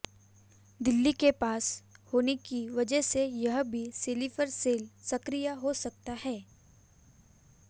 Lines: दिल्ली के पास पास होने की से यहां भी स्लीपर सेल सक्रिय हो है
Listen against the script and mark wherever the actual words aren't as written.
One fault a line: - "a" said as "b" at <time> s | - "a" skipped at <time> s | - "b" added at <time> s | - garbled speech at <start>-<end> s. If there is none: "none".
- "पास" skipped at 1.7 s
- "वजह" added at 2.7 s
- "सकता" added at 5.8 s